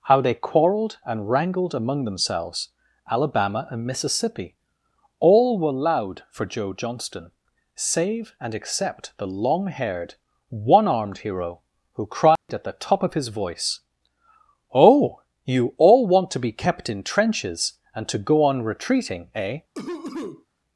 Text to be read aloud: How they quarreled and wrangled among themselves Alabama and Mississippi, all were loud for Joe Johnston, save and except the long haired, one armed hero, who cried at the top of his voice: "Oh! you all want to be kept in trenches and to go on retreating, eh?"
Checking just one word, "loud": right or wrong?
right